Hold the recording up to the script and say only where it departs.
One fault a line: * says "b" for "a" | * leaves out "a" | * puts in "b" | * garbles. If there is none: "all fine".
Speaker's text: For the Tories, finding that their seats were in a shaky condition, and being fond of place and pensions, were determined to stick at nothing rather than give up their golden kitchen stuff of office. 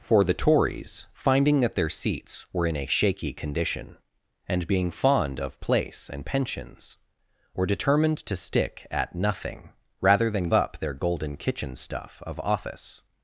* leaves out "give"